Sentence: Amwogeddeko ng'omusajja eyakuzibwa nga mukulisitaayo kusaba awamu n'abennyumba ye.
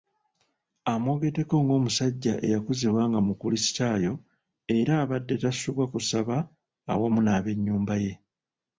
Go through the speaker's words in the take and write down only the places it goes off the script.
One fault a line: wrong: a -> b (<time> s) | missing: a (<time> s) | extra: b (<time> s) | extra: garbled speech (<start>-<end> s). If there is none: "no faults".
extra: era abadde tasubwa (4.8 s)